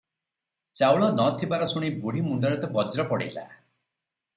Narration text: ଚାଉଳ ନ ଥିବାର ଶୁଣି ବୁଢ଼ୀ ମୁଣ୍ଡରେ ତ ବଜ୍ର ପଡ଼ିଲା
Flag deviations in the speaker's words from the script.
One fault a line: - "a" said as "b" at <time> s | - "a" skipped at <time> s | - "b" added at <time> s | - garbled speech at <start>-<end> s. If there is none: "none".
none